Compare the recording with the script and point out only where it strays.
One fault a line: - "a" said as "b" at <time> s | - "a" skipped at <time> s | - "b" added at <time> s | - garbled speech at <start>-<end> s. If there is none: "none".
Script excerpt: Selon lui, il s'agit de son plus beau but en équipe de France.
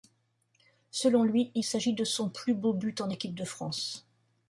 none